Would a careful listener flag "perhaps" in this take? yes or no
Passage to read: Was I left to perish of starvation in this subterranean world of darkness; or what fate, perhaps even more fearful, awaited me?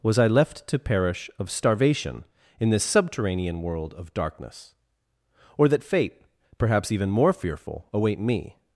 no